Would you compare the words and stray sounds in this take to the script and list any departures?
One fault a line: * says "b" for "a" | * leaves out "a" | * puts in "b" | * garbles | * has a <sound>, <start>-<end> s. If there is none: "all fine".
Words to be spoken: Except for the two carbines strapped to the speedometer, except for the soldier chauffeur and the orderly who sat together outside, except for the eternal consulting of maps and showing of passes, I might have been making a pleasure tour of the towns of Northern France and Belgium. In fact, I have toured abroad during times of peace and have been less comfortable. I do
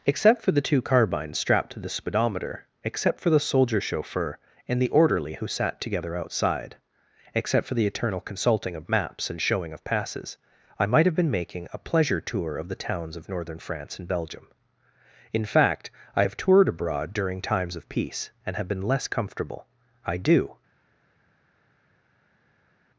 all fine